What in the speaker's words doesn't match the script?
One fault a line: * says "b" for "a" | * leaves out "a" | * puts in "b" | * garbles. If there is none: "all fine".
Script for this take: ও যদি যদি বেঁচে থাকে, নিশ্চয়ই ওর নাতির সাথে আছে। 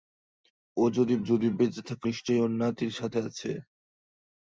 all fine